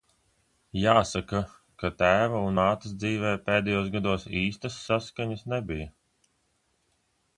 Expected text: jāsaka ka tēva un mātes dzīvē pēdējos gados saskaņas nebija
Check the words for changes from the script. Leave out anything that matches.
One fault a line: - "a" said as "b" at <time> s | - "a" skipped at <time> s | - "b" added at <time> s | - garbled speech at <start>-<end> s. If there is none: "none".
- "īstas" added at 4.4 s